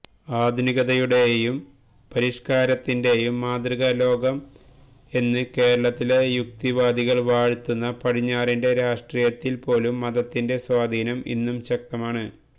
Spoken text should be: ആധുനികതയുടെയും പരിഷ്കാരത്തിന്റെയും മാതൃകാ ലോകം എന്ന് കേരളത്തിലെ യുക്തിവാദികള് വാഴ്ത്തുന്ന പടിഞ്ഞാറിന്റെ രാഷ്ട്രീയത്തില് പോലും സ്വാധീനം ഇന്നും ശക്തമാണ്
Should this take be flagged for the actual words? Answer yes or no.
yes